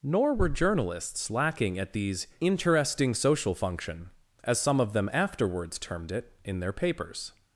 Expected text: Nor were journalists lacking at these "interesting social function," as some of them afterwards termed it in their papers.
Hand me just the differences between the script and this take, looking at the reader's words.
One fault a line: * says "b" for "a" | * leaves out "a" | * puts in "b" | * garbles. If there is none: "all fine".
all fine